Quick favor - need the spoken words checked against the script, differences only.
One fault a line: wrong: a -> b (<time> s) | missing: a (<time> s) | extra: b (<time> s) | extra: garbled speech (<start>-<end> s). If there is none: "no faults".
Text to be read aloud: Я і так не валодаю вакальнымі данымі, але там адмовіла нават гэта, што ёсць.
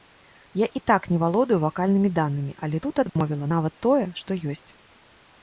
wrong: там -> тут (2.9 s)
wrong: гэта -> тое (3.9 s)